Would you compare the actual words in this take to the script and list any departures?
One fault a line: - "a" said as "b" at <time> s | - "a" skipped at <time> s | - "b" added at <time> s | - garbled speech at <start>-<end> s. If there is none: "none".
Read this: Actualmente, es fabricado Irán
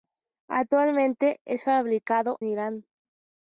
none